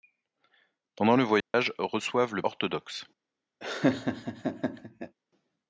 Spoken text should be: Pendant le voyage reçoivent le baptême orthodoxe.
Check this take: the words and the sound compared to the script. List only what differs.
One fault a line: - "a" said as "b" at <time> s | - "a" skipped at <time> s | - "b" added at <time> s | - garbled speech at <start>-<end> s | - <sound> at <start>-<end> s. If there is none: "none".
- dropout at 1.4-1.5 s
- "baptême" skipped at 2.4 s
- laugh at 3.6-5.2 s